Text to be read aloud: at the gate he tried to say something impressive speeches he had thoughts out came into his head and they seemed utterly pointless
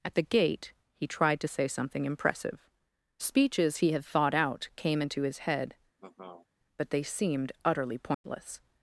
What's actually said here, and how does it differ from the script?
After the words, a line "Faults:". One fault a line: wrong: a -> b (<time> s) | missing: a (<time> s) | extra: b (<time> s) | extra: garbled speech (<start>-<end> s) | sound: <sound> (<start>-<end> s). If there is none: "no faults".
at the gate he tried to say something impressive speeches he had thought out came into his head but they seemed utterly pointless
Faults:
wrong: thoughts -> thought (4.0 s)
sound: laugh (6.0-6.5 s)
wrong: and -> but (6.8 s)
sound: dropout (8.1-8.2 s)